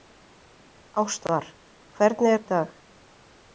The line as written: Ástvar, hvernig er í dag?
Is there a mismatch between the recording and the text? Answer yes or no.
no